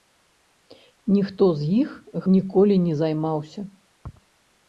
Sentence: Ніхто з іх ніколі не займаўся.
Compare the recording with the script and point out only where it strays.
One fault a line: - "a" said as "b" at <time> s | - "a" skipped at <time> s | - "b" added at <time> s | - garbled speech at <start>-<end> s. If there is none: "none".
none